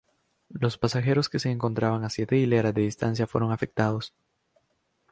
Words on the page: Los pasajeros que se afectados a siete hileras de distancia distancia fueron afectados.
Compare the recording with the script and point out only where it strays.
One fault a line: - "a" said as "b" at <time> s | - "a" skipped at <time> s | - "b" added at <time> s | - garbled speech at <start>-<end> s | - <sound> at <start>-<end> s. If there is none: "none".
- "afectados" said as "encontraban" at 1.5 s
- "distancia" skipped at 3.3 s